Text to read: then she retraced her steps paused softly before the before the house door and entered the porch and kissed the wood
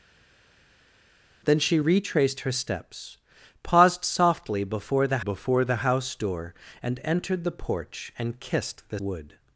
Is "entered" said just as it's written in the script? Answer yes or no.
yes